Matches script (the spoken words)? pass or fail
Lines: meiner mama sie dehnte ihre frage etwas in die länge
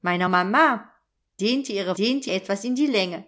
fail